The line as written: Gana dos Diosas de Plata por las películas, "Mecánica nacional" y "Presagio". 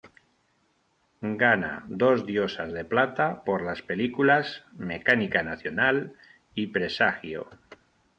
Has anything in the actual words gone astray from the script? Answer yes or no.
no